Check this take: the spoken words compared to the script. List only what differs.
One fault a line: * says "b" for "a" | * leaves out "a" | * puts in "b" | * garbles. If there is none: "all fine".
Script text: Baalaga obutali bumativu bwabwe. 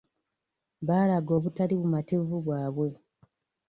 all fine